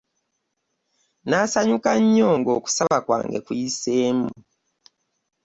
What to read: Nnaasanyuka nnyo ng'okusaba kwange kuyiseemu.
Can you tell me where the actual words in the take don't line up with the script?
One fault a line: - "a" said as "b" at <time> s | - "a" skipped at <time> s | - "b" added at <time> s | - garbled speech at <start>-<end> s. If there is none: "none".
none